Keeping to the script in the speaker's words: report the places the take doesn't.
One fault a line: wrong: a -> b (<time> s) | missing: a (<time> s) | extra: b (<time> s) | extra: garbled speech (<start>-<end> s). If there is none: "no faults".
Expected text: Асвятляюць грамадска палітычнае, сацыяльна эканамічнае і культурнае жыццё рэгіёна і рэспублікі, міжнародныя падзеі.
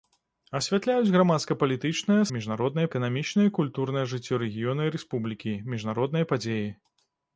wrong: сацыяльна -> міжнародныя (2.4 s)